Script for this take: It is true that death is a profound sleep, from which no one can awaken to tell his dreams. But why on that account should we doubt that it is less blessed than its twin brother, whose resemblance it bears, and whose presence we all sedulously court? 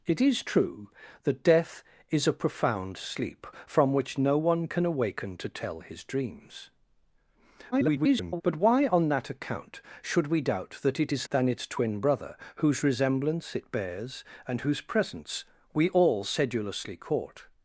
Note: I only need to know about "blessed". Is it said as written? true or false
false